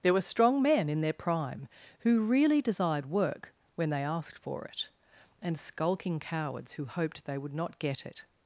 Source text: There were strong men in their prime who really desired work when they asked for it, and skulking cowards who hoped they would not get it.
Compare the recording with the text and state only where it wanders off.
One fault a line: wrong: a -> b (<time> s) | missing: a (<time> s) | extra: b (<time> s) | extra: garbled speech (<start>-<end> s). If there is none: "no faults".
no faults